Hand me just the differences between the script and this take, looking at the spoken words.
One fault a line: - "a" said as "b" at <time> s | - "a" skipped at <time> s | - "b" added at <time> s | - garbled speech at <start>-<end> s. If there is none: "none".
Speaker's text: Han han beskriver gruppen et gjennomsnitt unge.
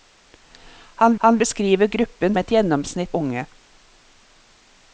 none